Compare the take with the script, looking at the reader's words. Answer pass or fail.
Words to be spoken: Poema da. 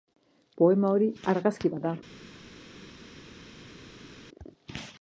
fail